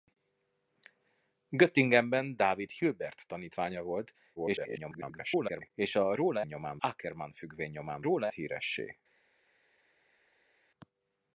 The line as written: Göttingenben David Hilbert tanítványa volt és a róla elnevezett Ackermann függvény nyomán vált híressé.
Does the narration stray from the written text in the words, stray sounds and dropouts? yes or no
yes